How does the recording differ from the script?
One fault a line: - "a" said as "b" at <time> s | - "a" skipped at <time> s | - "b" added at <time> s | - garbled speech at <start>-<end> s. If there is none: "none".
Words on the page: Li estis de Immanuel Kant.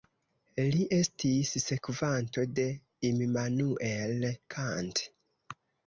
- "sekvanto" added at 1.6 s